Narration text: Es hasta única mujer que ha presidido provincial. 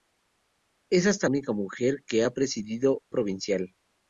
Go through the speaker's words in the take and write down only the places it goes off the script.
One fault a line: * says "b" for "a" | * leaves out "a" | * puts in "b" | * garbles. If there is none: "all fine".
all fine